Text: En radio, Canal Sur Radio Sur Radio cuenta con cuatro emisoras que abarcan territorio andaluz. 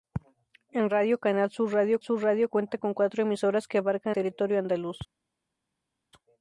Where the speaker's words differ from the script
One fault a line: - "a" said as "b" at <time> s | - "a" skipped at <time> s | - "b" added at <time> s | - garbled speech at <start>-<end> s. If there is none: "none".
none